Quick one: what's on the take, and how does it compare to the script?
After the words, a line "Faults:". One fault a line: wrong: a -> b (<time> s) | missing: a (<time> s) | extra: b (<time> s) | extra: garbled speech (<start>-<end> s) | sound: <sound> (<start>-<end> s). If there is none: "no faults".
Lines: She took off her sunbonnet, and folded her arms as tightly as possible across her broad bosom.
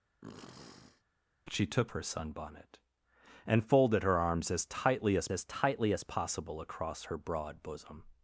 She took her sunbonnet, and folded her arms as tightly as as tightly as possible across her broad bosom.
Faults:
sound: sniff (0.2-1.0 s)
missing: off (1.9 s)
extra: as tightly as (5.3 s)